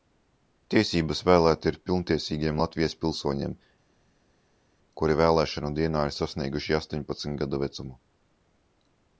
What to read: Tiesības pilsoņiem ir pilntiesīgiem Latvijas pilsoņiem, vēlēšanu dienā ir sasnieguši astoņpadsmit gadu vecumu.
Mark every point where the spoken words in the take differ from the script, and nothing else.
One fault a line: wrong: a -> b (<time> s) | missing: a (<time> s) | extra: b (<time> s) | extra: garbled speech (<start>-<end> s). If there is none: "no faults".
wrong: pilsoņiem -> vēlēt (1.2 s)
extra: kuri (5.0 s)